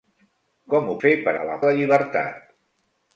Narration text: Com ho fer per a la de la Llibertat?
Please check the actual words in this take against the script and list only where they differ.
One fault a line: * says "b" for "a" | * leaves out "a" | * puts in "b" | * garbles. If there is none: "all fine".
all fine